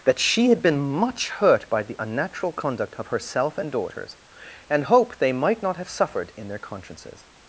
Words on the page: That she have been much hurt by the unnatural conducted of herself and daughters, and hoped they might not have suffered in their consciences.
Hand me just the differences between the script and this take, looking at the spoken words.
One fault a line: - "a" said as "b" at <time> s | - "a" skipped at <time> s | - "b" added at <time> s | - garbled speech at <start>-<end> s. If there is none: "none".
- "have" said as "had" at 0.5 s
- "conducted" said as "conduct" at 2.5 s